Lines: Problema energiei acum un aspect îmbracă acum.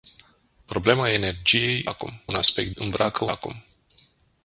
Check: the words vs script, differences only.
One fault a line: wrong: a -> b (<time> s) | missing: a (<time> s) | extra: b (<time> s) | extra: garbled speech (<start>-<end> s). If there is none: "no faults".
no faults